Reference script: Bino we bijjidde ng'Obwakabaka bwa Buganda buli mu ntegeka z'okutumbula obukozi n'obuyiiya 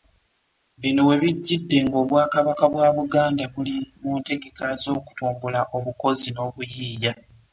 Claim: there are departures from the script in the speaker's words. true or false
false